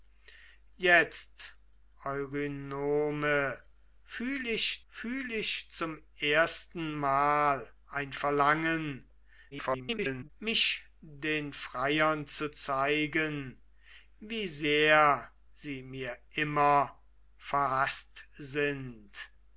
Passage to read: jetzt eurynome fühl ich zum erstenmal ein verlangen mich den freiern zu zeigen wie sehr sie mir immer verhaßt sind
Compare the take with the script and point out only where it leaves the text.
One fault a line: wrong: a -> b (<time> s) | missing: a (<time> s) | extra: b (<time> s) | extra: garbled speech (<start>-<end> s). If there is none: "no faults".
extra: fühl ich (4.9 s)
extra: garbled speech (9.5-10.3 s)